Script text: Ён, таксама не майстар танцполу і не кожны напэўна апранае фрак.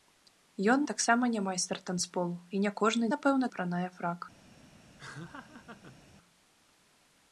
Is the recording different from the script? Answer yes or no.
no